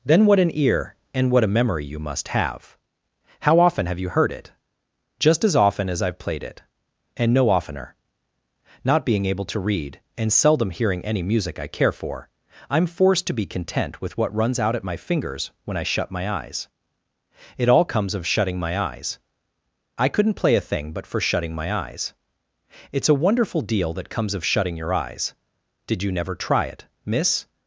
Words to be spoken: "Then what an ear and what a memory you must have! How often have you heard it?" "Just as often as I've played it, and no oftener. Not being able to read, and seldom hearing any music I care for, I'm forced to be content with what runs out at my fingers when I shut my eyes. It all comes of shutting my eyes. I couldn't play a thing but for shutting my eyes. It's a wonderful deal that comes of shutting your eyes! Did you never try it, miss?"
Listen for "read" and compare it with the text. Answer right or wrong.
right